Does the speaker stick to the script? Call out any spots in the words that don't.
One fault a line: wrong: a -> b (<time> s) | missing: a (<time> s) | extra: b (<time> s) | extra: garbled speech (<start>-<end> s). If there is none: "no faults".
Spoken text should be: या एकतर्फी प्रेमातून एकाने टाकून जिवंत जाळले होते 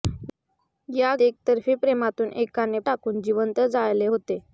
no faults